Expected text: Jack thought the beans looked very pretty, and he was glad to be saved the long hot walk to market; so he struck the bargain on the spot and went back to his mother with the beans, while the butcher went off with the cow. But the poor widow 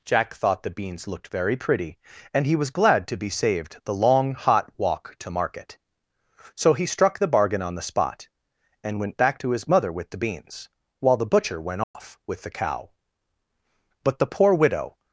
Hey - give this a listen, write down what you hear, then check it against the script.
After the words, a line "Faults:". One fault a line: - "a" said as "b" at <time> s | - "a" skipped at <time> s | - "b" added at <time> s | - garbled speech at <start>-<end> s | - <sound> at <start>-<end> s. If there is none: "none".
Jack thought the beans looked very pretty, and he was glad to be saved the long hot walk to market; so he struck the bargain on the spot and went back to his mother with the beans, while the butcher went off with the cow. But the poor widow
Faults:
- dropout at 11.8-11.9 s